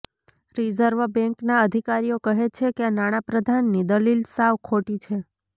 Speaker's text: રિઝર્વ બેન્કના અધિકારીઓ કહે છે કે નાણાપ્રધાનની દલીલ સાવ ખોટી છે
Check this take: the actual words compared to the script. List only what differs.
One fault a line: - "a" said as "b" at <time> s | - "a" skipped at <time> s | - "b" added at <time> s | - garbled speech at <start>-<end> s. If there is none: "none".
none